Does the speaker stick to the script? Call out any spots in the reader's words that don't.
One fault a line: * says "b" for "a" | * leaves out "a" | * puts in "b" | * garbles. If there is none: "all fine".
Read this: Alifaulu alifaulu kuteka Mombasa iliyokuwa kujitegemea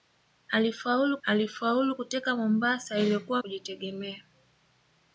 all fine